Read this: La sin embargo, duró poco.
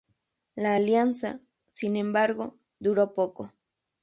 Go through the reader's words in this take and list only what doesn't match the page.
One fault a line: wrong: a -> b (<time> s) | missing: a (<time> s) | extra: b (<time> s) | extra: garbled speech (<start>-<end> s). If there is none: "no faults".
extra: alianza (0.7 s)